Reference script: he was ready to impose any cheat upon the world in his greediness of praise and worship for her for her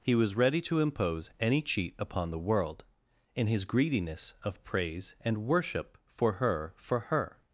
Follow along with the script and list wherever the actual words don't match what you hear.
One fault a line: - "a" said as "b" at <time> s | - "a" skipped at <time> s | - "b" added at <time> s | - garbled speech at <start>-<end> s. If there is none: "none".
none